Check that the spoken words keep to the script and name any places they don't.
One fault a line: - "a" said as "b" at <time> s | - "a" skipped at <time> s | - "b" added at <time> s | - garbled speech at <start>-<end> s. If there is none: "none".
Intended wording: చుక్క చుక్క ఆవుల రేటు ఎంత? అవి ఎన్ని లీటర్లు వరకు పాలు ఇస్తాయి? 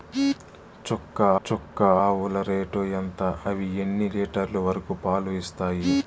none